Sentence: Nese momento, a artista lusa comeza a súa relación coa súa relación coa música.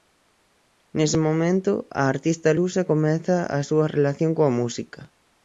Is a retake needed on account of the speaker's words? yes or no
yes